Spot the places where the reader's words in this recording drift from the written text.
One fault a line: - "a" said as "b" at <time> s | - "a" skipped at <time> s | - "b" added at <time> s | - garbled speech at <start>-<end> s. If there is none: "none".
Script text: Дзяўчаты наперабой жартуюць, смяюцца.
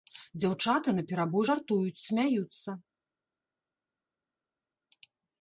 none